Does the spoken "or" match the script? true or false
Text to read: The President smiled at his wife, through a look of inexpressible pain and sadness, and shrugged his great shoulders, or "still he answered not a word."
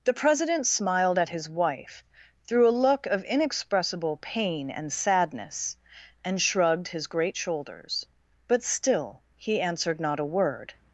false